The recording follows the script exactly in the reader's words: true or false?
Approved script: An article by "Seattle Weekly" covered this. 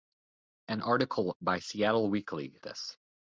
false